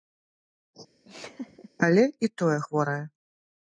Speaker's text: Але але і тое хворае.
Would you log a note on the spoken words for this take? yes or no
yes